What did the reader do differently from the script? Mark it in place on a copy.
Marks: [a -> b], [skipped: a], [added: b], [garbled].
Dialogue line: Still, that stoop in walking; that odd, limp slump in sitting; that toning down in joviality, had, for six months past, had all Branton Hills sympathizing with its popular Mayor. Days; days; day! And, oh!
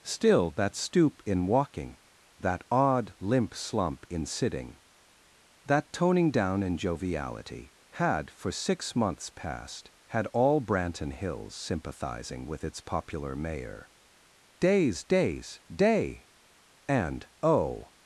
Still, that stoop in walking; that odd, limp slump in sitting; that toning down in joviality, had, for six months past, had all Branton Hills sympathizing with its popular Mayor. Days; days; day! And, oh!